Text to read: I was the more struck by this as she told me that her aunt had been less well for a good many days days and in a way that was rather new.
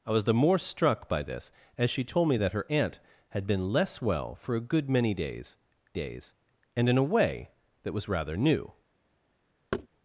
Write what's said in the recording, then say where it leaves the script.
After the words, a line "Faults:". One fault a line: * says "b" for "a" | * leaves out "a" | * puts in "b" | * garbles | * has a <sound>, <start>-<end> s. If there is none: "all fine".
I was the more struck by this as she told me that her aunt had been less well for a good many days days and in a way that was rather new.
Faults:
* has a thud, 9.7-9.9 s